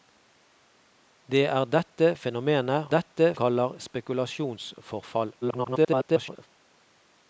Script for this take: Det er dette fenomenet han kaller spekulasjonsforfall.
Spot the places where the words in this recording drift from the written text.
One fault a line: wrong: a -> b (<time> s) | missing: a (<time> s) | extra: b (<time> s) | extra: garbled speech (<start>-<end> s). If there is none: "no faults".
wrong: han -> dette (2.9 s)
extra: garbled speech (5.4-6.5 s)